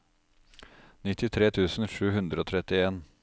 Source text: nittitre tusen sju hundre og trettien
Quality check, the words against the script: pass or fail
pass